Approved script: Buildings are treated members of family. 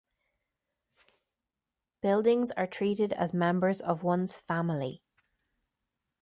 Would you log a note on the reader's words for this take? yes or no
yes